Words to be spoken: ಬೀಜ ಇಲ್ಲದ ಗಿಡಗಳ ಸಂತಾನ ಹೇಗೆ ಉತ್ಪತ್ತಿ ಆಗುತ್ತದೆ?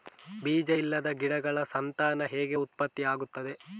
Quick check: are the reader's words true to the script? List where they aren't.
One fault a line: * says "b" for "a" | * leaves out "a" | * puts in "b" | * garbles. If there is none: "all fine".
all fine